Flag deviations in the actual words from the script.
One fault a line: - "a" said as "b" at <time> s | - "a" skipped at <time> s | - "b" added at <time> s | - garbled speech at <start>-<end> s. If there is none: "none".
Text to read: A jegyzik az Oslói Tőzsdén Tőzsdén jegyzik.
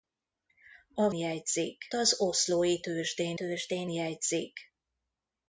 none